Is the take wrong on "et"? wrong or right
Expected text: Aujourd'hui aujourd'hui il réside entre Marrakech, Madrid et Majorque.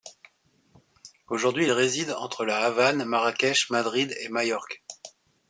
right